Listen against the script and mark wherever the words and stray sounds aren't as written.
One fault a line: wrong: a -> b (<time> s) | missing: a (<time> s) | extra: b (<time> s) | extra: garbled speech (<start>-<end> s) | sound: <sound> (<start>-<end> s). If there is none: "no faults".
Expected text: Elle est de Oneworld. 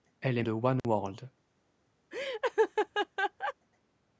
sound: dropout (0.8-0.8 s)
sound: laugh (2.1-3.5 s)